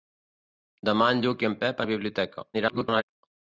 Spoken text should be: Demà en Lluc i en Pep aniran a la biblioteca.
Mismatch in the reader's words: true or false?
true